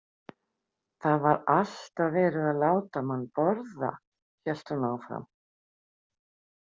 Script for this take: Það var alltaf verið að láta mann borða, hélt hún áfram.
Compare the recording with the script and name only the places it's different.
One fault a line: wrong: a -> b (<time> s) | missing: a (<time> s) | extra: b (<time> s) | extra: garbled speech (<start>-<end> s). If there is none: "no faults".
no faults